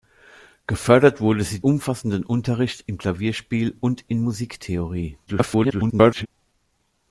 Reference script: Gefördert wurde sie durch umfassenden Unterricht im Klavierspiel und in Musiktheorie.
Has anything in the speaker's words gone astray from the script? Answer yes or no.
yes